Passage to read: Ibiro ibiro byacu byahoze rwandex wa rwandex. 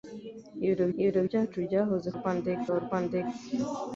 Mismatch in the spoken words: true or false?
false